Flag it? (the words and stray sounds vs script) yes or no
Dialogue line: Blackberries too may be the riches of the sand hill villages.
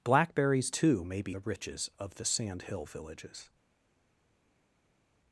no